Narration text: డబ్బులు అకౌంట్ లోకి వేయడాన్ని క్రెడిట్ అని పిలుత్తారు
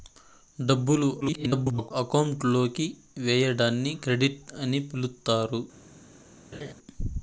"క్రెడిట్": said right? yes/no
yes